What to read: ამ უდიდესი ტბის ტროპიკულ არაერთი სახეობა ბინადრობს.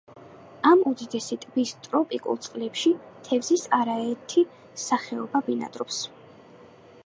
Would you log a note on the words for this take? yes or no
yes